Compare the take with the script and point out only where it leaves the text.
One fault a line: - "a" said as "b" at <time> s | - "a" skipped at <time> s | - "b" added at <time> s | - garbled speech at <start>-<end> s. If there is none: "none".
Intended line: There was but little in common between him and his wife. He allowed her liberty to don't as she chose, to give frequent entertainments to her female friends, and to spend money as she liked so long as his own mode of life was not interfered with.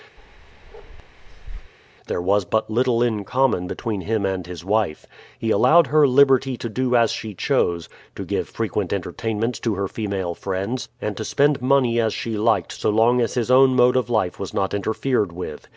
- "don't" said as "do" at 6.7 s